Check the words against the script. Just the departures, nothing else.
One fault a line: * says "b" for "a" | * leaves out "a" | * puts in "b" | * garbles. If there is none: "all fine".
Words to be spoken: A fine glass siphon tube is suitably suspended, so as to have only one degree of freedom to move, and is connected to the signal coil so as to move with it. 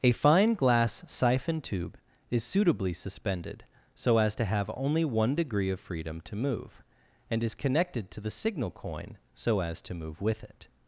* says "coin" for "coil"